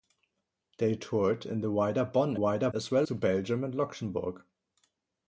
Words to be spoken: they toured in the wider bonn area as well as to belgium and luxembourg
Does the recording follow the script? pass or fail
fail